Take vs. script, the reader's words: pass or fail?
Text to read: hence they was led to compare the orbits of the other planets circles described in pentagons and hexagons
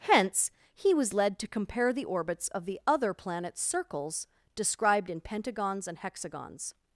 fail